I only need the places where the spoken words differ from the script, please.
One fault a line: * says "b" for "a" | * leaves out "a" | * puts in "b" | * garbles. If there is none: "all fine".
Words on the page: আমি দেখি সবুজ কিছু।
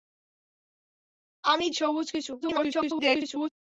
* leaves out "দেখি"
* garbles